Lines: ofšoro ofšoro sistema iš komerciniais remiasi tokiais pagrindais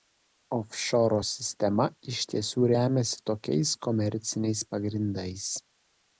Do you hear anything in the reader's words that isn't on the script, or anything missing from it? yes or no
yes